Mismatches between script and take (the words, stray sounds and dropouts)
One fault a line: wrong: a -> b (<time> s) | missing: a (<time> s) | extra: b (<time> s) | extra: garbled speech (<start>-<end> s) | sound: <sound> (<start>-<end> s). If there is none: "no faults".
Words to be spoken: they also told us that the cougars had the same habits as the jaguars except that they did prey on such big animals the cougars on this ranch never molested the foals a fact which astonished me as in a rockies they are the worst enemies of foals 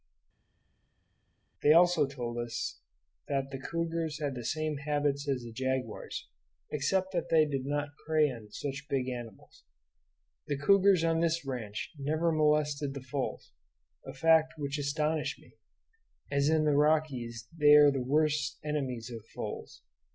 extra: not (7.7 s)
wrong: a -> the (16.6 s)